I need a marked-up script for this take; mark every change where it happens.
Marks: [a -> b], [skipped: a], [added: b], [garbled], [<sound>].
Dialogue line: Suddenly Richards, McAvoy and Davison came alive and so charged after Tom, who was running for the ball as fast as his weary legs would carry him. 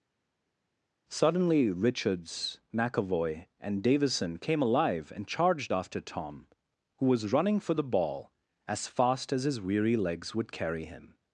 Suddenly Richards, McAvoy and Davison came alive and [skipped: so] charged after Tom, who was running for the ball as fast as his weary legs would carry him.